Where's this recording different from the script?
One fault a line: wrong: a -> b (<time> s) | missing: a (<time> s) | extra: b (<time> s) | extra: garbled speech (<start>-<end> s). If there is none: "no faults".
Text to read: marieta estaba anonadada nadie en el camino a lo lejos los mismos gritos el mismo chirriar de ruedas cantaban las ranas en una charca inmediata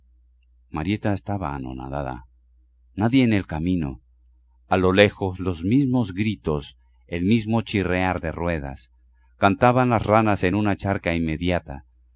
no faults